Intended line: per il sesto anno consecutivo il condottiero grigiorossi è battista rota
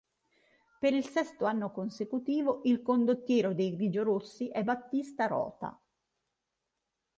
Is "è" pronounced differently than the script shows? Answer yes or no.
no